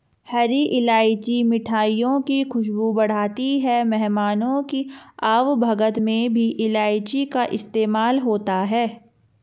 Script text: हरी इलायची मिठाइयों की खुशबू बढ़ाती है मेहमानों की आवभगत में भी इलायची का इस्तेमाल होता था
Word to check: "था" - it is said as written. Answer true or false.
false